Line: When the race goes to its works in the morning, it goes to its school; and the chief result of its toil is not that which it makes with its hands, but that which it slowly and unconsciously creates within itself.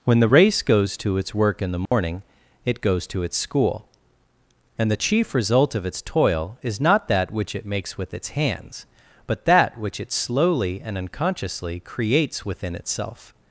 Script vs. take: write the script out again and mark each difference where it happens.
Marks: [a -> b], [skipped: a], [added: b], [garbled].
When the race goes to its [works -> work] in the morning, it goes to its school; and the chief result of its toil is not that which it makes with its hands, but that which it slowly and unconsciously creates within itself.